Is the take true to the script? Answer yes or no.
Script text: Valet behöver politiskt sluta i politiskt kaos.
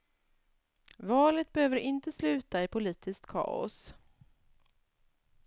no